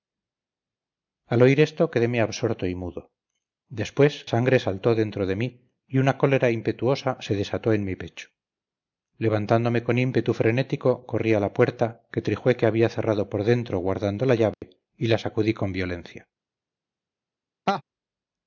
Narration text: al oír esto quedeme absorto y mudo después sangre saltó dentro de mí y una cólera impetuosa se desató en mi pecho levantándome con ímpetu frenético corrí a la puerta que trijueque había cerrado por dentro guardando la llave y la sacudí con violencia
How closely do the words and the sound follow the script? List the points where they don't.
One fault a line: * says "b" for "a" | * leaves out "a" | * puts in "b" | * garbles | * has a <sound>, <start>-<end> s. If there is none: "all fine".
* has a dropout, 14.5-14.6 s
* has a laugh, 17.7-17.8 s